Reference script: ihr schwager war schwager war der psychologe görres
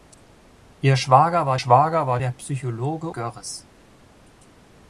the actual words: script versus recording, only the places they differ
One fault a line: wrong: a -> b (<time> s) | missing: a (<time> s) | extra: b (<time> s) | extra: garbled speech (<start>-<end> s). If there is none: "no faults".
no faults